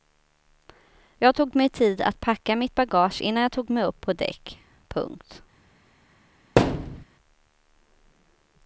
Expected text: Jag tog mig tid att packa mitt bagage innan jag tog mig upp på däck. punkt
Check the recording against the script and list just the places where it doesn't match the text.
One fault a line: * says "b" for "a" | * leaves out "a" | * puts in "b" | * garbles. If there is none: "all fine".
all fine